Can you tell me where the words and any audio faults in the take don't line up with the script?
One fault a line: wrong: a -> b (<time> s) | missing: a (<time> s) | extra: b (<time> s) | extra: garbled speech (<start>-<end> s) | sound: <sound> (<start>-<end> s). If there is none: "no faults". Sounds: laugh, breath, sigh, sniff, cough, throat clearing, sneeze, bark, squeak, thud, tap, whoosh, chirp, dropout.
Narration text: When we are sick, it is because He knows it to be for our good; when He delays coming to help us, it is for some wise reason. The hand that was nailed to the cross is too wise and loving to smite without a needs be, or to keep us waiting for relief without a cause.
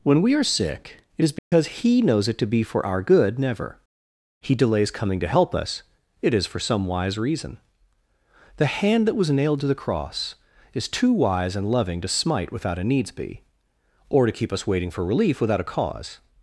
sound: dropout (1.4-1.5 s)
wrong: when -> never (3.4 s)